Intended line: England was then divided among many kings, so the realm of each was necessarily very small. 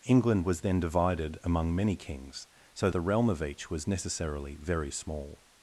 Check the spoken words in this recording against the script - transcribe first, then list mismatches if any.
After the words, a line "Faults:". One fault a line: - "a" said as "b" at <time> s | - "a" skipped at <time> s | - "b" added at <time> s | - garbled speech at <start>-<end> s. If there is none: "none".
England was then divided among many kings, so the realm of each was necessarily very small.
Faults:
none